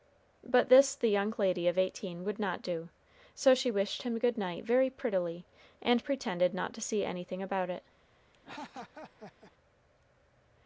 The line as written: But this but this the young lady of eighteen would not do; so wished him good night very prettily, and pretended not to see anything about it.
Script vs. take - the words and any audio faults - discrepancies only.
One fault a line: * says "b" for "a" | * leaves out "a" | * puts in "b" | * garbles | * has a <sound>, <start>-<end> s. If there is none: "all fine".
* leaves out "but this"
* puts in "she"
* has a laugh, 8.3-9.5 s